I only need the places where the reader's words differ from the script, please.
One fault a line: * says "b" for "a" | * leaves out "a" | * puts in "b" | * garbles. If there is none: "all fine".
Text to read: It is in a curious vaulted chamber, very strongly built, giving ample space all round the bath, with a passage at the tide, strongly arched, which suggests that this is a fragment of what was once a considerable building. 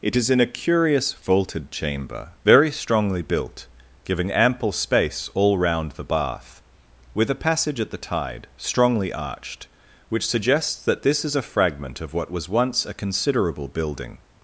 all fine